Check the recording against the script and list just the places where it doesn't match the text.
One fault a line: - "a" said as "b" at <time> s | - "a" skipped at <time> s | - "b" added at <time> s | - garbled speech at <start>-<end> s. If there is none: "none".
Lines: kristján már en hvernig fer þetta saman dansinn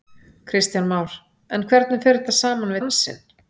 none